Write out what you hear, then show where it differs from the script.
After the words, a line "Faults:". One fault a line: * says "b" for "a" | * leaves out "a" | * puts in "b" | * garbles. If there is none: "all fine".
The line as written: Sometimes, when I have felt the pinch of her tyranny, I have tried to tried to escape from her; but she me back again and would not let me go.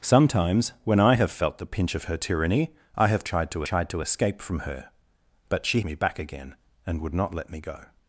Sometimes, when I have felt the pinch of her tyranny, I have tried to tried to escape from her; but she me back again and would not let me go.
Faults:
all fine